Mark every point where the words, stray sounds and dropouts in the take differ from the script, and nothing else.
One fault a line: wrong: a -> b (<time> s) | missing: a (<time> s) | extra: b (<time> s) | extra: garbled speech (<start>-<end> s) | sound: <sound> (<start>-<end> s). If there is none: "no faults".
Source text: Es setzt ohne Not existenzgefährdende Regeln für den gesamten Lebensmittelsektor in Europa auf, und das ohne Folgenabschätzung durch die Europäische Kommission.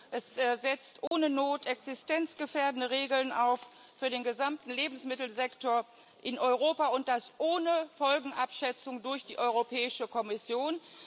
sound: dropout (1.1-1.1 s)